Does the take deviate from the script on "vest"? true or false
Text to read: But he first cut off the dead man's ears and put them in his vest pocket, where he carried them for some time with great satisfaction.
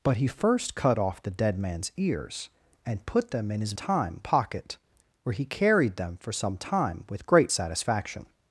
true